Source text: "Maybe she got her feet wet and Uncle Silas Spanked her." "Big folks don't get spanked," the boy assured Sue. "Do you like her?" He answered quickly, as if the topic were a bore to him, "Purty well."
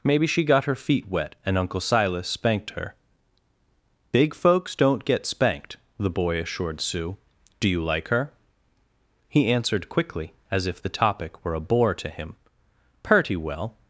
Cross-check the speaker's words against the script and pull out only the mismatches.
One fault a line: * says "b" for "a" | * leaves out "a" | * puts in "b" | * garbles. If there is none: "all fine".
all fine